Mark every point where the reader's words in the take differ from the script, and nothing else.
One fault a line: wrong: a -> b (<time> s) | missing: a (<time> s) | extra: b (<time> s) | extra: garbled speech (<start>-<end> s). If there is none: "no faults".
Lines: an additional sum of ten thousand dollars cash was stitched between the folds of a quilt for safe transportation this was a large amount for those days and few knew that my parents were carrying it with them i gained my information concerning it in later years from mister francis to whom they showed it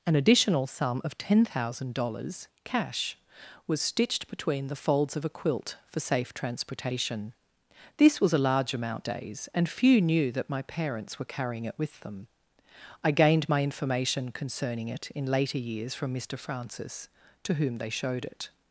missing: for those (9.1 s)